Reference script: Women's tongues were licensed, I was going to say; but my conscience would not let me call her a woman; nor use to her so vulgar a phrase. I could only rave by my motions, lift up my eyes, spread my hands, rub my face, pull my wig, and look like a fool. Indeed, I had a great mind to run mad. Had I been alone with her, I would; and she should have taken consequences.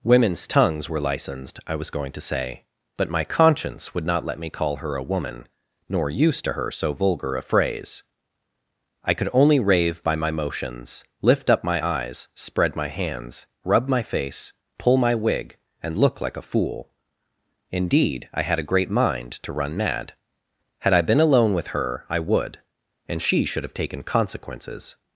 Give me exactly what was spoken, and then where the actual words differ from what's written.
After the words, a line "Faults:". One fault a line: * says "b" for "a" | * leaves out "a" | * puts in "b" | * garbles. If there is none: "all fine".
Women's tongues were licensed, I was going to say; but my conscience would not let me call her a woman; nor use to her so vulgar a phrase. I could only rave by my motions, lift up my eyes, spread my hands, rub my face, pull my wig, and look like a fool. Indeed, I had a great mind to run mad. Had I been alone with her, I would; and she should have taken consequences.
Faults:
all fine